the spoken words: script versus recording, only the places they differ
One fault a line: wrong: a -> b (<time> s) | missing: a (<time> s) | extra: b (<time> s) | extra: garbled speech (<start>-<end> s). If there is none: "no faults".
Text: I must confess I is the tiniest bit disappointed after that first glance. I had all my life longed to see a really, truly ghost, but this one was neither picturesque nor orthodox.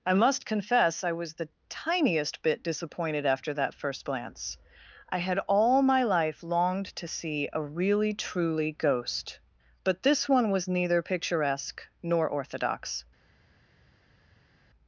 wrong: is -> was (1.1 s)